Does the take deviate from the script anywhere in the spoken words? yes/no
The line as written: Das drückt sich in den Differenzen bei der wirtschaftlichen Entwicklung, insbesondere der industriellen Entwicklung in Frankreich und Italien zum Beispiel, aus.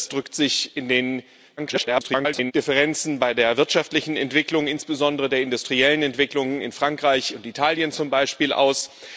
yes